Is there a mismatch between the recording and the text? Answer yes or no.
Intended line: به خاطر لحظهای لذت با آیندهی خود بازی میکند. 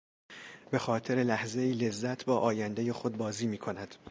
no